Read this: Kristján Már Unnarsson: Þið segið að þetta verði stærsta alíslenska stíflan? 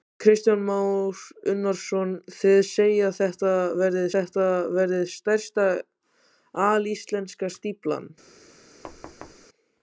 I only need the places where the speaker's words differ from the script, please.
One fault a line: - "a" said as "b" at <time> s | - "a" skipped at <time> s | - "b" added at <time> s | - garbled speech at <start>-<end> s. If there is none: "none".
- "þetta verði" added at 4.1 s